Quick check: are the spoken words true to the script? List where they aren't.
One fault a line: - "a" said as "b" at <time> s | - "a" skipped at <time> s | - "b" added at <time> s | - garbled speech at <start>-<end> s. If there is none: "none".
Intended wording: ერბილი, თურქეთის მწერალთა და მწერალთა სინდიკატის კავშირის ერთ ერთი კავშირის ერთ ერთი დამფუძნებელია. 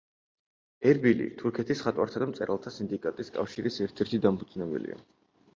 - "მწერალთა" said as "მხატვართა" at 1.8 s
- "კავშირის ერთ ერთი" skipped at 4.2 s